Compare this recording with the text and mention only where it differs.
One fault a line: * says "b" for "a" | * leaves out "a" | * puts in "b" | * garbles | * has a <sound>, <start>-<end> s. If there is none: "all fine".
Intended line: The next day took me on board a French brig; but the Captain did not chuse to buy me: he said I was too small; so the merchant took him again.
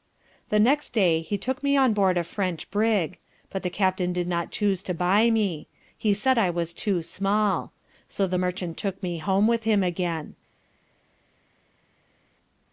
* puts in "he"
* puts in "me home with"